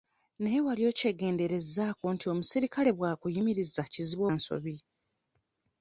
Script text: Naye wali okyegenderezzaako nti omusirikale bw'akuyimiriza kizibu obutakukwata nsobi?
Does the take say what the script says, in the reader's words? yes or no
no